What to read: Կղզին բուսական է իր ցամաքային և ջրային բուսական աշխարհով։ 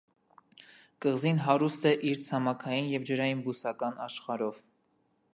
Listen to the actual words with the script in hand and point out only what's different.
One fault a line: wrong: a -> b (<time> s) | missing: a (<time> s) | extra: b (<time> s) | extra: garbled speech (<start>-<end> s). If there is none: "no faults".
wrong: բուսական -> հարուստ (1.5 s)